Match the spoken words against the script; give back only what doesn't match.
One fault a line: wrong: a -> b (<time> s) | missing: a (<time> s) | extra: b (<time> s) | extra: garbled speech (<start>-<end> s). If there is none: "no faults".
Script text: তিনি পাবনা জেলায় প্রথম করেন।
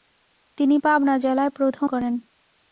no faults